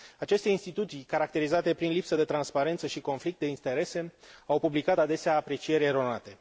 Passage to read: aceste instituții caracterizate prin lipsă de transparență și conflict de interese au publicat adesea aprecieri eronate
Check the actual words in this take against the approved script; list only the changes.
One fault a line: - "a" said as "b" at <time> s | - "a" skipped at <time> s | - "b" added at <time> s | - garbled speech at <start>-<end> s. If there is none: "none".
none